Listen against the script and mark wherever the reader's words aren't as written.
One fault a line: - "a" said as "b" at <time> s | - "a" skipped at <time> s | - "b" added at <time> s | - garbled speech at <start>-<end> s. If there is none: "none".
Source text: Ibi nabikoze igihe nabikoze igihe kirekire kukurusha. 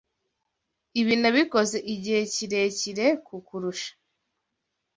- "nabikoze igihe" skipped at 2.2 s